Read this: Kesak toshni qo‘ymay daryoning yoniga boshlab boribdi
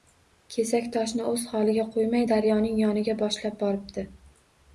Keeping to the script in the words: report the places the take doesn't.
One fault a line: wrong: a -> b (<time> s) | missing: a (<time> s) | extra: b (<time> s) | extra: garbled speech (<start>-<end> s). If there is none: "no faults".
extra: o‘z holiga (1.3 s)